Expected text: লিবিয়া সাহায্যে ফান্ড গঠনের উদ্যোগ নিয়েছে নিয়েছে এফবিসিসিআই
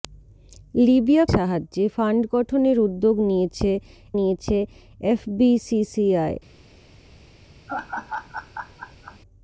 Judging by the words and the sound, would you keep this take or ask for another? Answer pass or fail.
fail